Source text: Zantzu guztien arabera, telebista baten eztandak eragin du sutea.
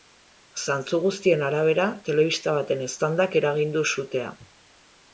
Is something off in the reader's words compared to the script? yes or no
no